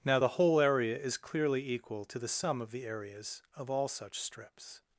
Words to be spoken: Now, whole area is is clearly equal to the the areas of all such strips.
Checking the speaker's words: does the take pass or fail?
fail